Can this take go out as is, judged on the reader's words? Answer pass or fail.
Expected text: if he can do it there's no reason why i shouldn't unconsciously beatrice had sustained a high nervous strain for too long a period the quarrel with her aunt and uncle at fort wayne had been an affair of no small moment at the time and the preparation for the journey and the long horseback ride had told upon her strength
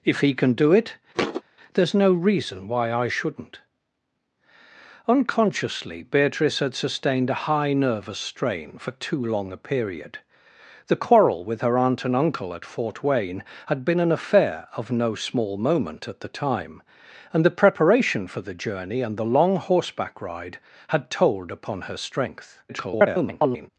fail